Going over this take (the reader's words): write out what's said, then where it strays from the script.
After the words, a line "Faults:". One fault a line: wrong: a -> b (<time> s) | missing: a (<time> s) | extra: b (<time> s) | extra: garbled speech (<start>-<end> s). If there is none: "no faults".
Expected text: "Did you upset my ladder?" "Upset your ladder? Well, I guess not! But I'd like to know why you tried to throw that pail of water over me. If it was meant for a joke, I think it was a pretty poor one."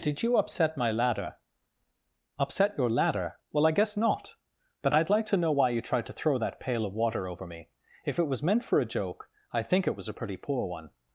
"Did you upset my ladder?" "Upset your ladder? Well, I guess not! But I'd like to know why you tried to throw that pail of water over me. If it was meant for a joke, I think it was a pretty poor one."
Faults:
no faults